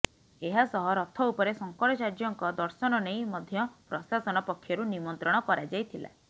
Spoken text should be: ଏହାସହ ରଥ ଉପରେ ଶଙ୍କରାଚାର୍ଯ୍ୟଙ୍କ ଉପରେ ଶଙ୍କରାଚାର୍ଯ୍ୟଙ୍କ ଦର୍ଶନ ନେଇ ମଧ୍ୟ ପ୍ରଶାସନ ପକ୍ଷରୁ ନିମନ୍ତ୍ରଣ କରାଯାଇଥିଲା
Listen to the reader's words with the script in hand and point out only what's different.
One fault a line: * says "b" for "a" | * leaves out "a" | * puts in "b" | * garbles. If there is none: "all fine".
* leaves out "ଉପରେ ଶଙ୍କରାଚାର୍ଯ୍ୟଙ୍କ"